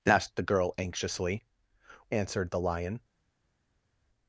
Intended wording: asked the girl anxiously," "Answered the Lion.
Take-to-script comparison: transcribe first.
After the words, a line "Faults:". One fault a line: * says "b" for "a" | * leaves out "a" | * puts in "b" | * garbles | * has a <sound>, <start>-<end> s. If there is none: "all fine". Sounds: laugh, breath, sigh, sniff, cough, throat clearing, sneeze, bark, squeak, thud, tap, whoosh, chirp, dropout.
asked the girl anxiously," "Answered the Lion.
Faults:
all fine